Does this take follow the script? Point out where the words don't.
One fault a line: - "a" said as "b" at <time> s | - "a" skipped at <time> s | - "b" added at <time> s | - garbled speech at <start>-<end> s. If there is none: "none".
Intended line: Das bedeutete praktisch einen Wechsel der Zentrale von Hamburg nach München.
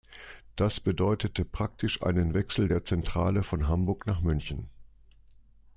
none